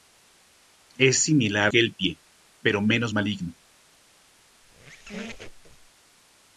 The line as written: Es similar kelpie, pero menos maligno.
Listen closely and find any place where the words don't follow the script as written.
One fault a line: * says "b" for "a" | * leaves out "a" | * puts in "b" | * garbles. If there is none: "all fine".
all fine